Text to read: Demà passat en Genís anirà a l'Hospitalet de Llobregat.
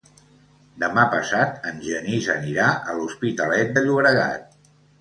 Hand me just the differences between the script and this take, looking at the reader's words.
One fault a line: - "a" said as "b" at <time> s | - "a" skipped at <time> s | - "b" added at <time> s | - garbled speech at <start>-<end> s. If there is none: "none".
none